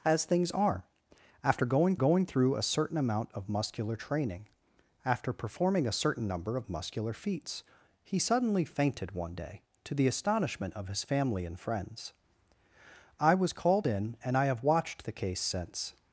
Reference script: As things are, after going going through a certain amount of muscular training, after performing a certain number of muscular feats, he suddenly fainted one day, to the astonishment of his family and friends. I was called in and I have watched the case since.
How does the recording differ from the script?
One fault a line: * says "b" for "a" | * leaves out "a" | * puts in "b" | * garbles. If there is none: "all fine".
all fine